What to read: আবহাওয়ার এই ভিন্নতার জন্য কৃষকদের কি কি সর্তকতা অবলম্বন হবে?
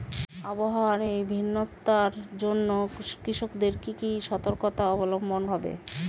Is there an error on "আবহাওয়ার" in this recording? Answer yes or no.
no